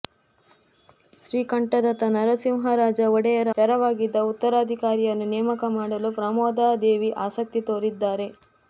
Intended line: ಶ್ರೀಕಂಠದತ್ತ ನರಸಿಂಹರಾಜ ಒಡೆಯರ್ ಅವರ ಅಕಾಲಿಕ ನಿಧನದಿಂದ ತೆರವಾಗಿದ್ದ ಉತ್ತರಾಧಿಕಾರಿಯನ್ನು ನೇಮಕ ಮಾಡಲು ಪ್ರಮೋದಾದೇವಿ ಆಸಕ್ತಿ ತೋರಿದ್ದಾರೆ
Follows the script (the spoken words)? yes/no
no